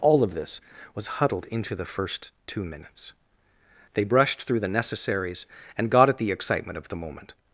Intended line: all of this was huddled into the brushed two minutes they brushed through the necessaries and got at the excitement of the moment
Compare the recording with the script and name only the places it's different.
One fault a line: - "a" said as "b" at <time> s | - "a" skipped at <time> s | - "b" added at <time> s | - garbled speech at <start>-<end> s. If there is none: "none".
- "brushed" said as "first" at 1.9 s